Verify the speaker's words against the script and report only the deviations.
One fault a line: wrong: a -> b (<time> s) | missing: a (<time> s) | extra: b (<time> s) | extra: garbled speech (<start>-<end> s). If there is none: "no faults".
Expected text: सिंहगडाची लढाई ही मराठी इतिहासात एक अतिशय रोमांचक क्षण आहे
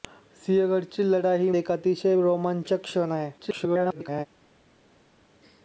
missing: मराठी इतिहासात (1.5 s)
extra: garbled speech (3.4-4.3 s)